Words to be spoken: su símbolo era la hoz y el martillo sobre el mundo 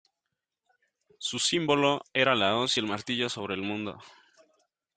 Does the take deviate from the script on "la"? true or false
false